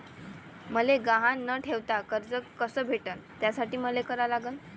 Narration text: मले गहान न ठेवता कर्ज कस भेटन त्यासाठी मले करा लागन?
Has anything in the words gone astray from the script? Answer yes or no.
no